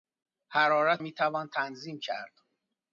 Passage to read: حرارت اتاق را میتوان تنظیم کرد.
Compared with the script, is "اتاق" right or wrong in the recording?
wrong